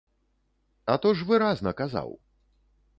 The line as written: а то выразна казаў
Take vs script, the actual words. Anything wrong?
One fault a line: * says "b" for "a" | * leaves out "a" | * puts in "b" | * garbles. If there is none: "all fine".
* puts in "ж"